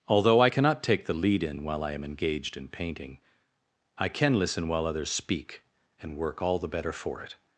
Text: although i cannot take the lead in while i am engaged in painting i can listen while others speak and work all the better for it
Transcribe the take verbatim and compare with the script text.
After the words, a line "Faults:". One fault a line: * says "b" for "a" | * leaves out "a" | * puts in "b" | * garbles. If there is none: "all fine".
although i cannot take the lead in while i am engaged in painting i can listen while others speak and work all the better for it
Faults:
all fine